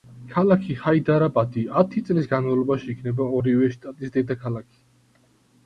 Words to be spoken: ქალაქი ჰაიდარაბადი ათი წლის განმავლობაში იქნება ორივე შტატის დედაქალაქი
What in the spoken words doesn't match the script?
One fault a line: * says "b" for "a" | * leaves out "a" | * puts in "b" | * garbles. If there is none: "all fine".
all fine